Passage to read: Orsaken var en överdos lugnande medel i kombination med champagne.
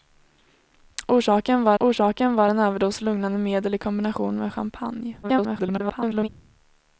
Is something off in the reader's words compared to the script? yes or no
yes